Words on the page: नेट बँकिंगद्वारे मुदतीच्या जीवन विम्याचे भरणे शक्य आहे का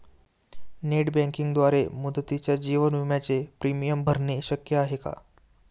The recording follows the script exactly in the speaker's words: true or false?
false